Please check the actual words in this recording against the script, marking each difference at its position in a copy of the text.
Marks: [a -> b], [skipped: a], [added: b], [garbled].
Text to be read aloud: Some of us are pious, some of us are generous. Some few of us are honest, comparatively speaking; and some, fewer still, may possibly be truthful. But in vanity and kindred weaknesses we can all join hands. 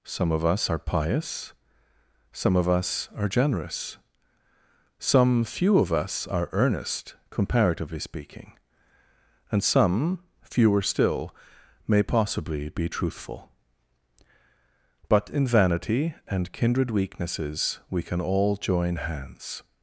Some of us are pious, some of us are generous. Some few of us are [honest, -> earnest] comparatively speaking; and some, fewer still, may possibly be truthful. But in vanity and kindred weaknesses we can all join hands.